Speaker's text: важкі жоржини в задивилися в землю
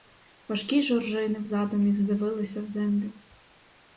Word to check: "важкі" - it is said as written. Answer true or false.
true